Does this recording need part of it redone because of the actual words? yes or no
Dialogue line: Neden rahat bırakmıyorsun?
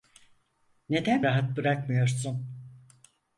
no